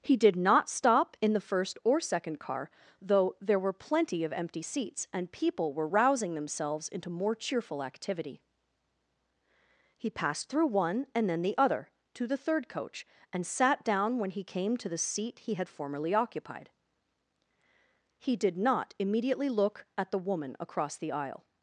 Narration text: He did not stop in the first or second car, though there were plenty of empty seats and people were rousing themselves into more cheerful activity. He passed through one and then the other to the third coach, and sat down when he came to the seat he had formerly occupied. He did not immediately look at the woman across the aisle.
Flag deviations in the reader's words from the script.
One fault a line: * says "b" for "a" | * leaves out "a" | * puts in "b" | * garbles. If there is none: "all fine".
all fine